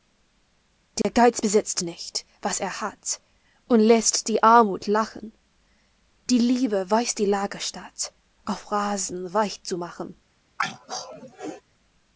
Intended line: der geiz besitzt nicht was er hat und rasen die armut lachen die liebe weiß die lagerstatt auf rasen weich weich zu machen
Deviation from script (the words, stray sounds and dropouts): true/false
true